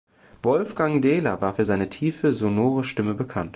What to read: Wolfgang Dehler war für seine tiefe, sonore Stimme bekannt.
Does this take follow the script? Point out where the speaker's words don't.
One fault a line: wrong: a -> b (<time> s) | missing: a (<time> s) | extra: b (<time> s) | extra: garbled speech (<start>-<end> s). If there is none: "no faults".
no faults